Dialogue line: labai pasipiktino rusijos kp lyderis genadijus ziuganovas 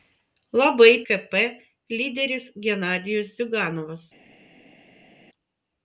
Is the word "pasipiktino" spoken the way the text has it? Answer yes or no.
no